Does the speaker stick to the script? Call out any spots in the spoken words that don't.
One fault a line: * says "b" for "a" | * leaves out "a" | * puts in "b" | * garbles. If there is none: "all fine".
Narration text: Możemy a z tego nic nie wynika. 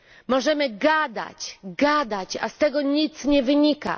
* puts in "gadać gadać"